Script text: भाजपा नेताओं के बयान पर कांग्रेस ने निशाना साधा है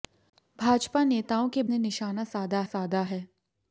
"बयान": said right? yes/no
no